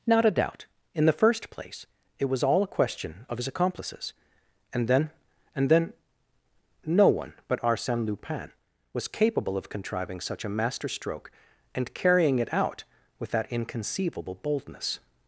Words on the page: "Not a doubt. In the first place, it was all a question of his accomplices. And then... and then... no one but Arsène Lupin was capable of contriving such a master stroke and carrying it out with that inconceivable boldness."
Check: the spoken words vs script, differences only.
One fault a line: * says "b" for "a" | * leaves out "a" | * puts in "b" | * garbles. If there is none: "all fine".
all fine